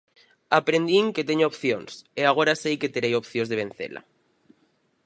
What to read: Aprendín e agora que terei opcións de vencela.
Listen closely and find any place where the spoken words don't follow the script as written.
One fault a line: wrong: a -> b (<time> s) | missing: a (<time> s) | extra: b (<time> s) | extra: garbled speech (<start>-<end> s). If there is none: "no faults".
extra: que teño opcións (1.1 s)
extra: sei (2.6 s)